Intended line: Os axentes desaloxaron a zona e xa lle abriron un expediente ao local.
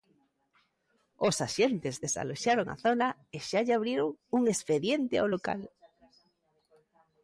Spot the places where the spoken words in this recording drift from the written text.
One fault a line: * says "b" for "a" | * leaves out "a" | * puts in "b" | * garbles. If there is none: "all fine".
all fine